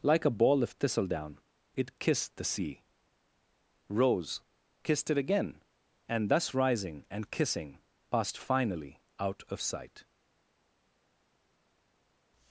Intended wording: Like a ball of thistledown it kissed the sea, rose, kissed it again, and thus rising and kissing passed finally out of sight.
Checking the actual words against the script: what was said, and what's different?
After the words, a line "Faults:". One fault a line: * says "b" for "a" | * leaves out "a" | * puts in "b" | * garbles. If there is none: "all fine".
Like a ball of thistledown it kissed the sea, rose, kissed it again, and thus rising and kissing passed finally out of sight.
Faults:
all fine